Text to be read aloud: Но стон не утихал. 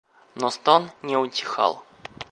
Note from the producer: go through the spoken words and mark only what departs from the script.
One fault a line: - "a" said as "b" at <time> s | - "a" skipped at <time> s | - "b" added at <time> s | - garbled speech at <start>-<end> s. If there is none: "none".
none